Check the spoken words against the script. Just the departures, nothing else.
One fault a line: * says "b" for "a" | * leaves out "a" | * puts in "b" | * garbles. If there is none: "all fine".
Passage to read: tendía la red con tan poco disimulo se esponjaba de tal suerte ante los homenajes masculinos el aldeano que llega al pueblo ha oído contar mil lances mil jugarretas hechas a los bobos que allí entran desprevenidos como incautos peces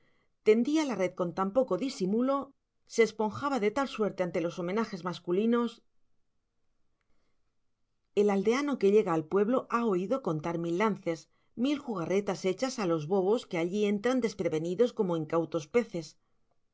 all fine